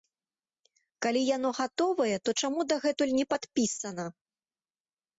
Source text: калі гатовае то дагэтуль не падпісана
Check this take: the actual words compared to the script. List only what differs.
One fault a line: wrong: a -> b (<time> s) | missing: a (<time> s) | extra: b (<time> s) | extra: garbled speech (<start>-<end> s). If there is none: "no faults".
extra: яно (1.4 s)
extra: чаму (2.4 s)